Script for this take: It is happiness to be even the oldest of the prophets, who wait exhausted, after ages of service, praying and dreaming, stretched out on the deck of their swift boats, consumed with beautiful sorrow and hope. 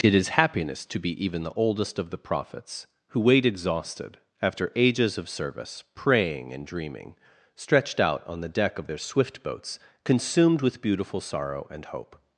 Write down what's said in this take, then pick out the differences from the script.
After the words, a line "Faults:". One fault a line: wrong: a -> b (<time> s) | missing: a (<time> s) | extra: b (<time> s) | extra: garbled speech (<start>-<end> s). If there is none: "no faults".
It is happiness to be even the oldest of the prophets, who wait exhausted, after ages of service, praying and dreaming, stretched out on the deck of their swift boats, consumed with beautiful sorrow and hope.
Faults:
no faults